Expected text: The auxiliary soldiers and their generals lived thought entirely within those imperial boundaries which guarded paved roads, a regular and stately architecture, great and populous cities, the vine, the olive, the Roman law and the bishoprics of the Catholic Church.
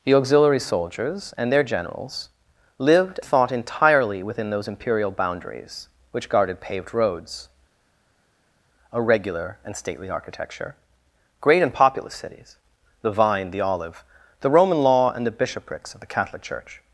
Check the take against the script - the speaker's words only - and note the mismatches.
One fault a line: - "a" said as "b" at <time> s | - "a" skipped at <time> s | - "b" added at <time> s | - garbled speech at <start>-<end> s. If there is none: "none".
none